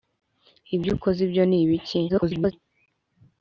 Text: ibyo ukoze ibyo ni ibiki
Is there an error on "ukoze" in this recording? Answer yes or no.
no